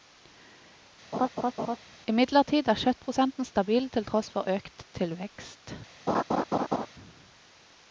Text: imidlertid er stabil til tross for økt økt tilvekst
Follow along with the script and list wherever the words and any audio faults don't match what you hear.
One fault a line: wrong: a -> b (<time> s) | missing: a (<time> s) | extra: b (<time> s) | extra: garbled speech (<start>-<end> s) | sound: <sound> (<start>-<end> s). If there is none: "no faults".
sound: laugh (1.1-1.8 s)
extra: kjøttprosenten (2.8 s)
missing: økt (4.9 s)
sound: laugh (6.1-6.9 s)